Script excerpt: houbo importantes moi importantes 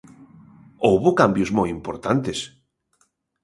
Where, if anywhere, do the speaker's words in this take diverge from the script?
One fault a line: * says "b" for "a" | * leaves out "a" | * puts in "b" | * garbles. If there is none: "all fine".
* says "cambios" for "importantes"